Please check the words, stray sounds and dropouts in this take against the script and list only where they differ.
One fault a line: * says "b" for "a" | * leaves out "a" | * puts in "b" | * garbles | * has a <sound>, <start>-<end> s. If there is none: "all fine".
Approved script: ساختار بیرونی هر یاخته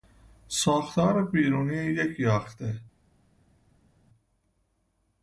* says "یک" for "هر"